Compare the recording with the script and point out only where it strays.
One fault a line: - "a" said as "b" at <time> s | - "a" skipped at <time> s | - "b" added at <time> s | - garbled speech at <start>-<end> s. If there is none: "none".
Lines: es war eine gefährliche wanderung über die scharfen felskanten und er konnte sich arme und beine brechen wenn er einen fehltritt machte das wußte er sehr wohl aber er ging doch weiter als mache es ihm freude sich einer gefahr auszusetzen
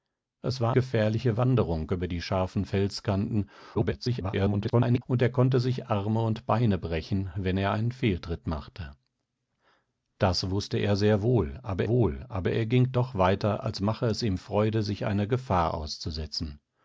- "eine" skipped at 0.8 s
- garbled speech at 3.7-5.0 s
- "wohl aber" added at 11.9 s